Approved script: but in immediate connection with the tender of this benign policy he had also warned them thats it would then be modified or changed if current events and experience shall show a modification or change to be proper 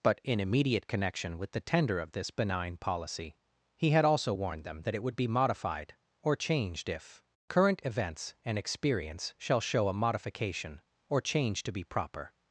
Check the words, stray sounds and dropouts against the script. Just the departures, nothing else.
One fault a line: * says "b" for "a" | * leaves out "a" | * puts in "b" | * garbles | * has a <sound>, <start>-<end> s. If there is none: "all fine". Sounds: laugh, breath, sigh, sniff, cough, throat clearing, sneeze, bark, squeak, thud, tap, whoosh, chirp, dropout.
* says "that" for "thats"
* leaves out "then"